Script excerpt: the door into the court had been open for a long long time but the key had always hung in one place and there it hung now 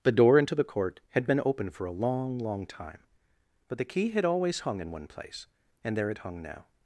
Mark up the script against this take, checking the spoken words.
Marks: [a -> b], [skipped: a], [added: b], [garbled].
the door into the court had been open for a long long time but the key had always hung in one place and there it hung now